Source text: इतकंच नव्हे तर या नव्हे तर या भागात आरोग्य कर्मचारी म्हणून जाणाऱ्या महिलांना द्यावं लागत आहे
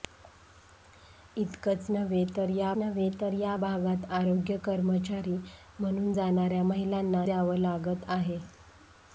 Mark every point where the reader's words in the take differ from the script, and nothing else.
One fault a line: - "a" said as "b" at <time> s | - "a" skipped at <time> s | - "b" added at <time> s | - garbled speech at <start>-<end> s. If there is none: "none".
none